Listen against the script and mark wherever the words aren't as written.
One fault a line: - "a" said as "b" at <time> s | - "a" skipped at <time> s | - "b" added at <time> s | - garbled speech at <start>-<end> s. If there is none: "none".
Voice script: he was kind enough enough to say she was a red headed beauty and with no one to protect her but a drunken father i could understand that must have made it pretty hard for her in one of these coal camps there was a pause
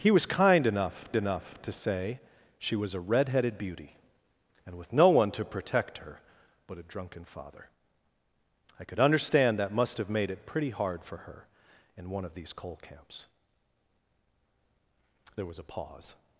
none